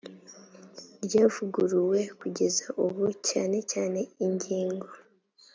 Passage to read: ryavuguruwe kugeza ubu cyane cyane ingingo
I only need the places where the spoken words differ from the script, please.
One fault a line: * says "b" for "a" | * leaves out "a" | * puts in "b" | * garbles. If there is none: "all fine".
all fine